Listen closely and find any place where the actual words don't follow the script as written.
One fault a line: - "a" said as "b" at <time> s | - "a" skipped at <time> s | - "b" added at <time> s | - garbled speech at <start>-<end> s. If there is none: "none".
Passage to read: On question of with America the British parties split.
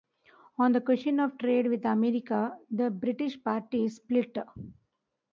- "the" added at 0.7 s
- "trade" added at 1.4 s